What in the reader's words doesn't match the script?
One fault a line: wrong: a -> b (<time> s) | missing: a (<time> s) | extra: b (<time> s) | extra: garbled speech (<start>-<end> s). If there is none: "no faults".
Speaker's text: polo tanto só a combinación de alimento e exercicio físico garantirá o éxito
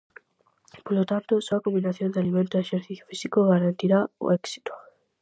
no faults